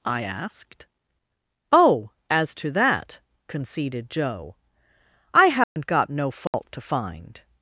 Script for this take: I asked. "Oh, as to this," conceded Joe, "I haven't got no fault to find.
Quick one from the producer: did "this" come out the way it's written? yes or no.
no